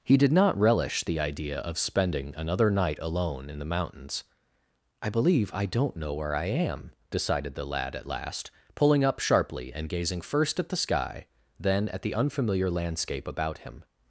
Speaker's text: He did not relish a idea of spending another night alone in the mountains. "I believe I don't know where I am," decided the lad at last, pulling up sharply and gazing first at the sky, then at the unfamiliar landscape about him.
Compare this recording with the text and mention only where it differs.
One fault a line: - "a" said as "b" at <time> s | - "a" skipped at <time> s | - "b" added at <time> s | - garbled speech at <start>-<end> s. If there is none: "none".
- "a" said as "the" at 1.0 s